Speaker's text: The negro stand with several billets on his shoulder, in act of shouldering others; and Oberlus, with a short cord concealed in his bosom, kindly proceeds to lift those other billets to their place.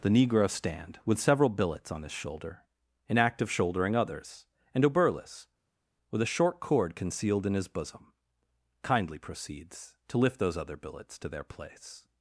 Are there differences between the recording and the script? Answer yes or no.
no